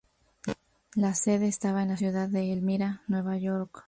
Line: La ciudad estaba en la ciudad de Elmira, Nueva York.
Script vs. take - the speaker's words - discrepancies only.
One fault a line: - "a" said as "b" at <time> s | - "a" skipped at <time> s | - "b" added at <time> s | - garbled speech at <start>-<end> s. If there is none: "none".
- "ciudad" said as "sede" at 1.1 s